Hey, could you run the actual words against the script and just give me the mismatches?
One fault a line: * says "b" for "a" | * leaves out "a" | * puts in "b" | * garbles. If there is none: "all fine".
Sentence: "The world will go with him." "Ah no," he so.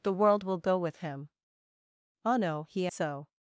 all fine